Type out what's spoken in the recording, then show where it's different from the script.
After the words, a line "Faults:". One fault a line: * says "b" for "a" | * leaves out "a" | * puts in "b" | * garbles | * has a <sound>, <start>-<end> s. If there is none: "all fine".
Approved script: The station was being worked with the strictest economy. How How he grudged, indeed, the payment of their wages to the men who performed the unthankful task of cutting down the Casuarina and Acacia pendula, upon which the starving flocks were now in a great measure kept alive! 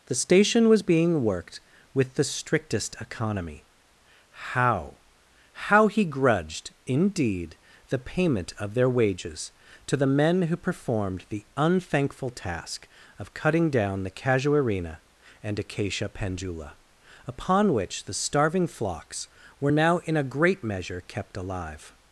The station was being worked with the strictest economy. How How he grudged, indeed, the payment of their wages to the men who performed the unthankful task of cutting down the Casuarina and Acacia pendula, upon which the starving flocks were now in a great measure kept alive!
Faults:
all fine